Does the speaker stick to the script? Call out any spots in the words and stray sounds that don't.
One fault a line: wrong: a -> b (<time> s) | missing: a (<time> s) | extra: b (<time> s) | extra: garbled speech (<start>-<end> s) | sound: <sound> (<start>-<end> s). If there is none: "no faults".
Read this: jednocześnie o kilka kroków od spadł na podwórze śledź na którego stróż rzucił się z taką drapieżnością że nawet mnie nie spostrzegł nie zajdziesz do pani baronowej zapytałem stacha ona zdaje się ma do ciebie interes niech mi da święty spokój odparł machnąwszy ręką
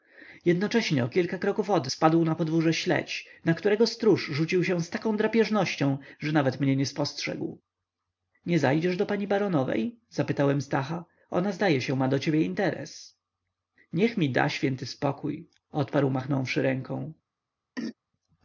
sound: throat clearing (17.8-18.0 s)